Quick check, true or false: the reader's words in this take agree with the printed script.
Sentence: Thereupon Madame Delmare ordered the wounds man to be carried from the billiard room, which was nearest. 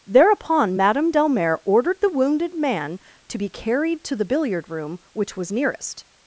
false